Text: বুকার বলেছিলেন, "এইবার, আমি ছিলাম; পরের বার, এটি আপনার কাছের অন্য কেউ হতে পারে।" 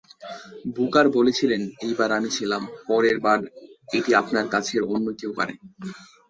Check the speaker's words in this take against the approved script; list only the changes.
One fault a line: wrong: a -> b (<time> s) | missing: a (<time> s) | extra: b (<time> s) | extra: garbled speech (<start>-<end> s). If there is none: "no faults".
missing: হতে (5.3 s)